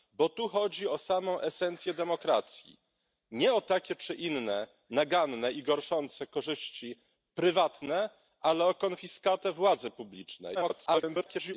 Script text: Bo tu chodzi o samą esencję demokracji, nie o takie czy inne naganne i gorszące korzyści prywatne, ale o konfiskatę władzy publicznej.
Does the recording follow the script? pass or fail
fail